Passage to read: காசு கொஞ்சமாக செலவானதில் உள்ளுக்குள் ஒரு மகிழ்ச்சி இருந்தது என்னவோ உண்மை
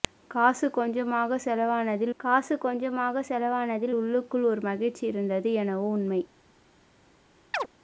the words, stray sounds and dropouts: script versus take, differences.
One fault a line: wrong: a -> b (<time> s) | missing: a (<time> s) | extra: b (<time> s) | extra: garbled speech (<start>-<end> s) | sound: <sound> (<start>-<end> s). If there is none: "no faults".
extra: காசு கொஞ்சமாக செலவானதில் (2.2 s)
sound: chirp (7.5-7.7 s)